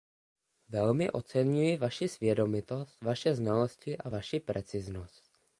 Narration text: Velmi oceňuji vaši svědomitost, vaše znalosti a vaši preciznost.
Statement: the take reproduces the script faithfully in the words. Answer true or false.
true